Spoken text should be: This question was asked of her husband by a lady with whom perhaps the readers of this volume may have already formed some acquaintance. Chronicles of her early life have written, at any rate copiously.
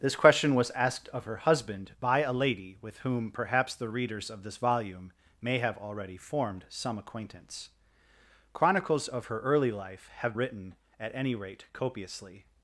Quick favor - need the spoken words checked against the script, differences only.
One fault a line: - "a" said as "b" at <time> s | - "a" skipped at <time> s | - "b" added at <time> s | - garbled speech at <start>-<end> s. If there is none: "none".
none